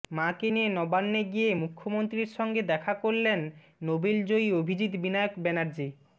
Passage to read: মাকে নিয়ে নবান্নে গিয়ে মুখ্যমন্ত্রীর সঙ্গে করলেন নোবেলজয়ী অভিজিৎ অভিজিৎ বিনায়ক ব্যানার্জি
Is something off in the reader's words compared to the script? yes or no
yes